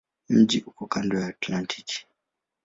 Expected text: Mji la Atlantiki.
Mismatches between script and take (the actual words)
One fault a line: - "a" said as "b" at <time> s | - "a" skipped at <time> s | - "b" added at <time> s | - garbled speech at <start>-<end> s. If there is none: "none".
- "uko kando" added at 0.7 s